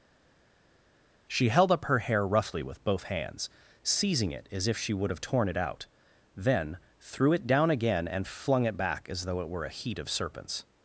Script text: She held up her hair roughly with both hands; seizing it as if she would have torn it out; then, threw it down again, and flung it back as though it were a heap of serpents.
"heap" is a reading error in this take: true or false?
true